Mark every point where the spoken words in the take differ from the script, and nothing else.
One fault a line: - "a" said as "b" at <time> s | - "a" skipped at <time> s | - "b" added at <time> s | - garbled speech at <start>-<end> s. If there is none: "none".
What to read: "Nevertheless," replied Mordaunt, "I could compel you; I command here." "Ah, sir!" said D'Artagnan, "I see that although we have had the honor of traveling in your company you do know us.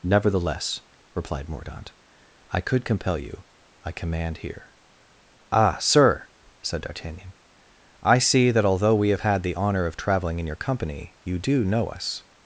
none